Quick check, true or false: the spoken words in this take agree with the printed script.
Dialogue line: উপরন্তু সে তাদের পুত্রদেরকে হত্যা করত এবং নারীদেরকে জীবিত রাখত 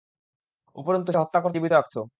false